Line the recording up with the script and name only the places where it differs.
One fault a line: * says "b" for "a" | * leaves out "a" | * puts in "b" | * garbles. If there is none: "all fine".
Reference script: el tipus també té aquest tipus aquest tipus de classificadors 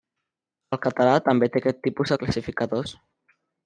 * says "català" for "tipus"
* leaves out "aquest tipus"